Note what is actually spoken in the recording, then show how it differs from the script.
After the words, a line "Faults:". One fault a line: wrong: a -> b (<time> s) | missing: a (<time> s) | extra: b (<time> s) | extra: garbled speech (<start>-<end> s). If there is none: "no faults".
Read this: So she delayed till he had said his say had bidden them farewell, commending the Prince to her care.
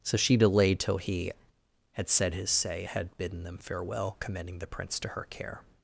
So she delayed till he had said his say had bidden them farewell, commending the Prince to her care.
Faults:
no faults